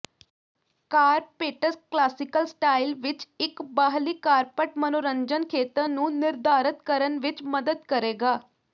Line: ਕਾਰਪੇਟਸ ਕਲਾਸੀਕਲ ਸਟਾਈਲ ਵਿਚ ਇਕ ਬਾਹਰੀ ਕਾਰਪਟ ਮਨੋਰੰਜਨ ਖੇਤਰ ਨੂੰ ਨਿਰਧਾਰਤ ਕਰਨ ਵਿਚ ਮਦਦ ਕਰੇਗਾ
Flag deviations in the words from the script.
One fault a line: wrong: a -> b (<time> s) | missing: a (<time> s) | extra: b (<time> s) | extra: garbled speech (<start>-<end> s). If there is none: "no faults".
no faults